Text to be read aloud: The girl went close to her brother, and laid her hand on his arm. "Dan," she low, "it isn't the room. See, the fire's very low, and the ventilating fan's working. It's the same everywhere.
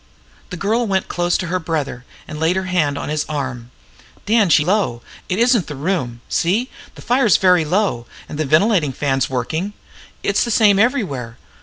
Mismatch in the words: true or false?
false